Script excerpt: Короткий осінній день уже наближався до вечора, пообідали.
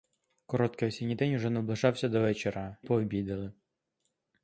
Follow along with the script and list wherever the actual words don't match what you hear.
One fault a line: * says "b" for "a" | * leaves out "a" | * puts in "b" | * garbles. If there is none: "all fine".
all fine